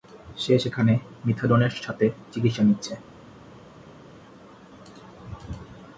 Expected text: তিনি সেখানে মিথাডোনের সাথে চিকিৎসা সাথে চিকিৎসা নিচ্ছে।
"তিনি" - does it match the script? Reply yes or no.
no